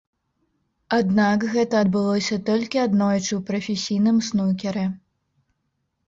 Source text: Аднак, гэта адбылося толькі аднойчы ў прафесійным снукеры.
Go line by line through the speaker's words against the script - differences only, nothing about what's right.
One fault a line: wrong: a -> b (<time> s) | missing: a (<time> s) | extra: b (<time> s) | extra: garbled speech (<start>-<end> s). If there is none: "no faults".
no faults